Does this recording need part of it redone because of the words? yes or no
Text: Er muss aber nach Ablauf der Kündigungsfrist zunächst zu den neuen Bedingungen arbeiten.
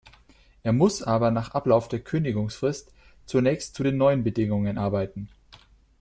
no